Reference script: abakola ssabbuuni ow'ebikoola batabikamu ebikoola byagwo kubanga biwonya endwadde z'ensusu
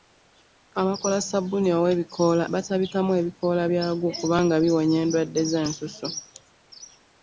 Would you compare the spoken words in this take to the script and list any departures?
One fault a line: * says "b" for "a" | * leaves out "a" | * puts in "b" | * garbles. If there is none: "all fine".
all fine